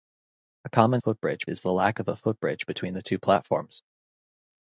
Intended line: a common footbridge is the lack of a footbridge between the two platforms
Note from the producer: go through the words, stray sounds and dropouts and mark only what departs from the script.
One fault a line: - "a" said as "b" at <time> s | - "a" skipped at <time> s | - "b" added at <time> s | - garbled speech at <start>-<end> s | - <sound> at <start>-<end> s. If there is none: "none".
none